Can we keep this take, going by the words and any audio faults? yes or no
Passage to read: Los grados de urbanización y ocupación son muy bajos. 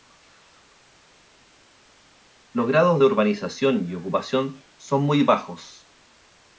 yes